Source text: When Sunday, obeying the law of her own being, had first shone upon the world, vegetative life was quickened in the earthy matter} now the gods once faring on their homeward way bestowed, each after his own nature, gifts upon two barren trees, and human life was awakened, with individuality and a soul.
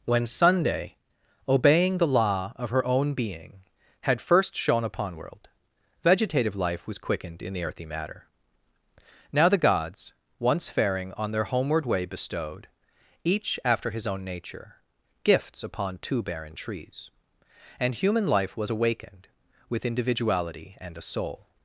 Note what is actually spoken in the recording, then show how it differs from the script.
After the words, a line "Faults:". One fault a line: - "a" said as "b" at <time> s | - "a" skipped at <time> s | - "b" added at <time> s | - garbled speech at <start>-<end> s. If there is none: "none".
When Sunday, obeying the law of her own being, had first shone upon world, vegetative life was quickened in the earthy matter} now the gods once faring on their homeward way bestowed, each after his own nature, gifts upon two barren trees, and human life was awakened, with individuality and a soul.
Faults:
- "the" skipped at 5.2 s